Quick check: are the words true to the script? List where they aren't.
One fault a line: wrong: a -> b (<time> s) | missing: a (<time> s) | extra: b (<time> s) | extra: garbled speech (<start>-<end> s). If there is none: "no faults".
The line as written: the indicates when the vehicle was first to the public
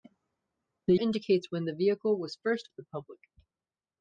no faults